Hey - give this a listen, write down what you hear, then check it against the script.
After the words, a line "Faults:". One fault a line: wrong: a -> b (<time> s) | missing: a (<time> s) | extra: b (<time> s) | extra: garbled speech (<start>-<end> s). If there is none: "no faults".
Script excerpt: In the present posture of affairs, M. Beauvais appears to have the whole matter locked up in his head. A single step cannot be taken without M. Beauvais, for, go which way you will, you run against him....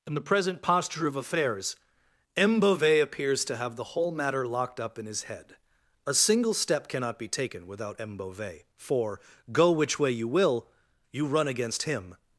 In the present posture of affairs, M. Beauvais appears to have the whole matter locked up in his head. A single step cannot be taken without M. Beauvais, for, go which way you will, you run against him....
Faults:
no faults